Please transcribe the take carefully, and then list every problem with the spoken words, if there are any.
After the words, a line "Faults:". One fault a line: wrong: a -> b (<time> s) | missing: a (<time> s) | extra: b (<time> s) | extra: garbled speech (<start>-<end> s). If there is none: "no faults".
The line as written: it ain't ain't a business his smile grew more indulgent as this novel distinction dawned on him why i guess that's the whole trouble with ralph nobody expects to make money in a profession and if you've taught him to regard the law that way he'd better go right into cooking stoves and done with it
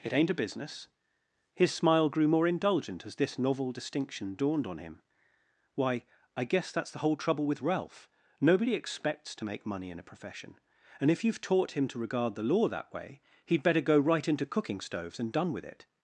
it ain't a business his smile grew more indulgent as this novel distinction dawned on him why i guess that's the whole trouble with ralph nobody expects to make money in a profession and if you've taught him to regard the law that way he'd better go right into cooking stoves and done with it
Faults:
missing: ain't (0.3 s)